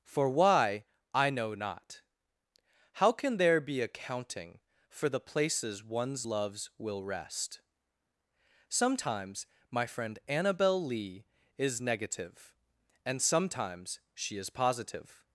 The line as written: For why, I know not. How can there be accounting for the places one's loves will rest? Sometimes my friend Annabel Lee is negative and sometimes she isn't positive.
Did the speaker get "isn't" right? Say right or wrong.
wrong